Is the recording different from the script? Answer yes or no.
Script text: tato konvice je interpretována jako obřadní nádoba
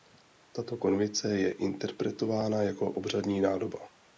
no